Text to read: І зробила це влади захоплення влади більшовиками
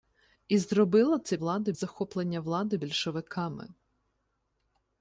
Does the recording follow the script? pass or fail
pass